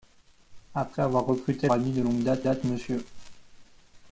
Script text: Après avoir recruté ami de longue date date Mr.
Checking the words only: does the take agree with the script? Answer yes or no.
yes